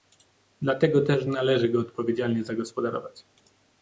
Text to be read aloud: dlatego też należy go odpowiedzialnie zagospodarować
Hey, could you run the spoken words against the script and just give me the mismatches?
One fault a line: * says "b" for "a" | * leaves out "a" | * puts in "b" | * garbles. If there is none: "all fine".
all fine